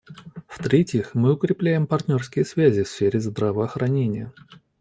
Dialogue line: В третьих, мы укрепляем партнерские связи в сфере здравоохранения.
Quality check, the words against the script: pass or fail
pass